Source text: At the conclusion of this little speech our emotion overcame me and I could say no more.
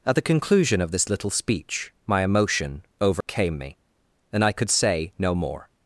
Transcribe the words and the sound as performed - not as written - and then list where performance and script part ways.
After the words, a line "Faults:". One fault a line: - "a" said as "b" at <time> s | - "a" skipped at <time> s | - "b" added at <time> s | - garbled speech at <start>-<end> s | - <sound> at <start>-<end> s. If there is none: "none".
At the conclusion of this little speech my emotion overcame me and I could say no more.
Faults:
- "our" said as "my" at 2.1 s
- dropout at 3.2-3.3 s